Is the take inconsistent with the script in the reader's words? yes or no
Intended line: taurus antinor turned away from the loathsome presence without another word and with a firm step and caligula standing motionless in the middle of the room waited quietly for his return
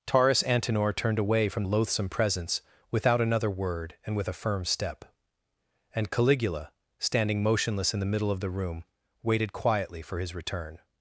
yes